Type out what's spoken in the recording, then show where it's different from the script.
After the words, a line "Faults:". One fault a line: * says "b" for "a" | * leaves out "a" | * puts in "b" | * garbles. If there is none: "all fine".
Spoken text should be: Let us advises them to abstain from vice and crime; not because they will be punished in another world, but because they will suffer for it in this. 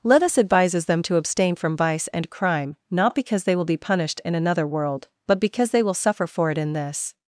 Let us advises them to abstain from vice and crime; not because they will be punished in another world, but because they will suffer for it in this.
Faults:
all fine